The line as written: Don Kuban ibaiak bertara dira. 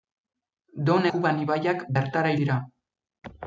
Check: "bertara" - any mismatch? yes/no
no